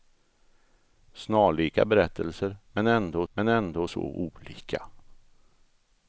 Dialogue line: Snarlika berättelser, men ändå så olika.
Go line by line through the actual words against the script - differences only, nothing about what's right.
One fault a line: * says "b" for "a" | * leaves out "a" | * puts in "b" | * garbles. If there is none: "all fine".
* puts in "men ändå"